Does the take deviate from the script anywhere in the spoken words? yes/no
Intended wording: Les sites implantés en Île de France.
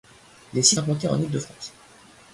no